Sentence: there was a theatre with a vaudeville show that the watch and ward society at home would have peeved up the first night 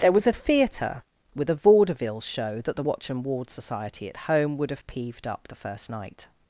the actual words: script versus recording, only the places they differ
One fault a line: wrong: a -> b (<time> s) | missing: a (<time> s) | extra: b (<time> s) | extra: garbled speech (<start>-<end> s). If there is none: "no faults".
no faults